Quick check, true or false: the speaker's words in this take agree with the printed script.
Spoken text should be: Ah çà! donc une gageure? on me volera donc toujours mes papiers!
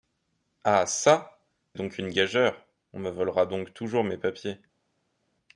true